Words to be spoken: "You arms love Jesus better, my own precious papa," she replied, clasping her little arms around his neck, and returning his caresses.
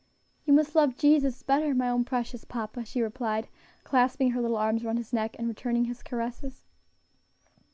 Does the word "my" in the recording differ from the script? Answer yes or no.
no